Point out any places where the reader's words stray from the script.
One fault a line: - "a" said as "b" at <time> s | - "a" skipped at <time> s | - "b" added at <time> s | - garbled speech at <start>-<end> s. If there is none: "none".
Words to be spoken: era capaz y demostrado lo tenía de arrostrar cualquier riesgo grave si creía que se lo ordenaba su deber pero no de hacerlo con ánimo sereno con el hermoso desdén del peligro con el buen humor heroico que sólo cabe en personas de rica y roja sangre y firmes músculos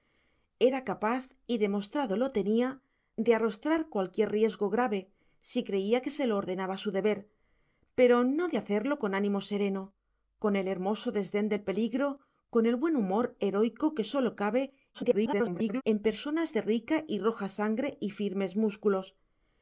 - garbled speech at 14.9-15.8 s